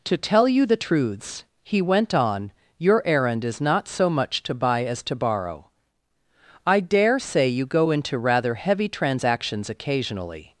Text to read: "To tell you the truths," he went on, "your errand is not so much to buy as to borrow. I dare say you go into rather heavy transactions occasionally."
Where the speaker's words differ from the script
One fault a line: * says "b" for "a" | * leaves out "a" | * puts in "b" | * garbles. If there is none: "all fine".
all fine